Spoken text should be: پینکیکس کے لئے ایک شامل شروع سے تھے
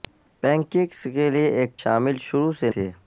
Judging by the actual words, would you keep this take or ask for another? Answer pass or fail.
pass